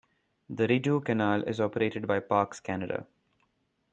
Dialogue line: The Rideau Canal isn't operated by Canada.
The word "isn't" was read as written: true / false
false